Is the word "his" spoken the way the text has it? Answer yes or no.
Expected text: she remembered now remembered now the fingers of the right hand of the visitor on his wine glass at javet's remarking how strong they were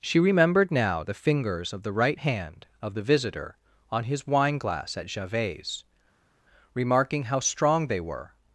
yes